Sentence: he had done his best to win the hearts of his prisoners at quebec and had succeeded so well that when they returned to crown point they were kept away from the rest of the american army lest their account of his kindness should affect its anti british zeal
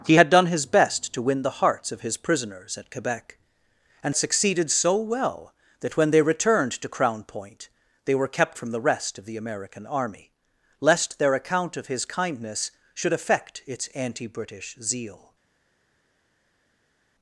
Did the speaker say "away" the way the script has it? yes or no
no